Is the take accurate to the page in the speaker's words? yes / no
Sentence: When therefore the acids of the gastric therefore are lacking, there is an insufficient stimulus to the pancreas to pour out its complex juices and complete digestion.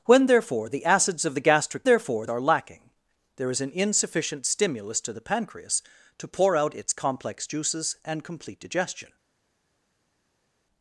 yes